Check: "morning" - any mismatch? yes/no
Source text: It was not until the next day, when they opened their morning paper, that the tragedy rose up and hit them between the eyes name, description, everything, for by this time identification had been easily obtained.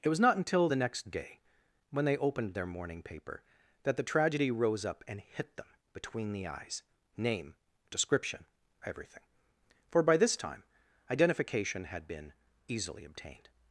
no